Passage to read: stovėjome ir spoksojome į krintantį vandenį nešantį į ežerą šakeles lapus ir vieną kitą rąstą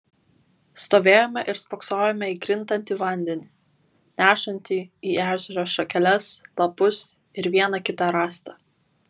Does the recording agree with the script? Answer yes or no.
yes